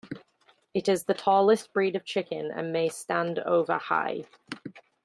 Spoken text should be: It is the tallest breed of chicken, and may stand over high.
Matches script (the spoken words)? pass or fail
pass